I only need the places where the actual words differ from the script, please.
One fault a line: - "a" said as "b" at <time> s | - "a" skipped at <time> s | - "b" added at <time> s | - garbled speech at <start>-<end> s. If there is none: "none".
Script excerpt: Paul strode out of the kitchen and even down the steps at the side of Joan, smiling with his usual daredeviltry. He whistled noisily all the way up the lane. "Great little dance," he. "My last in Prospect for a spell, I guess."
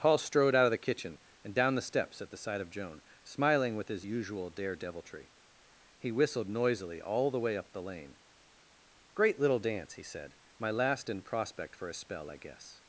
- "even" skipped at 1.6 s
- "said" added at 10.0 s